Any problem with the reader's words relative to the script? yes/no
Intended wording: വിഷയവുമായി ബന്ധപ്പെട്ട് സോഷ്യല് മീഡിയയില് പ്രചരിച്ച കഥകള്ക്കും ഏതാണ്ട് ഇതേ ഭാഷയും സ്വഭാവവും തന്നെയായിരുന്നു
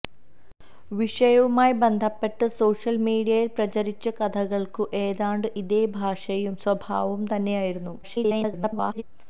yes